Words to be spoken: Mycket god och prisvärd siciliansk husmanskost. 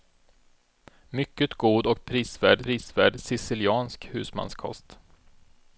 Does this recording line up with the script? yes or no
no